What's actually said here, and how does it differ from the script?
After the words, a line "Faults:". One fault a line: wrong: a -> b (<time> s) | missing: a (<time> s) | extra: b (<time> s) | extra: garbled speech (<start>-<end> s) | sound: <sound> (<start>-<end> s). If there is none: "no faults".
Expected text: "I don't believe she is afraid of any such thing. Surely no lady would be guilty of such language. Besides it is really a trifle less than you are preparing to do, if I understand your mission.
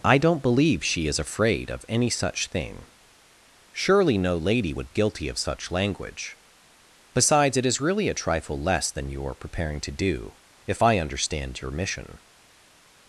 "I don't believe she is afraid of any such thing. Surely no lady would guilty of such language. Besides it is really a trifle less than you are preparing to do, if I understand your mission.
Faults:
missing: be (4.9 s)